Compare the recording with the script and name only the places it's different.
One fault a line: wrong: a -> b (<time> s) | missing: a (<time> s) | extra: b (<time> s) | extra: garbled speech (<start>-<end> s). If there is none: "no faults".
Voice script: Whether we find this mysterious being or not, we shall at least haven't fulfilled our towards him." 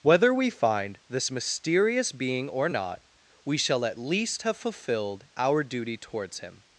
wrong: haven't -> have (4.4 s)
extra: duty (5.6 s)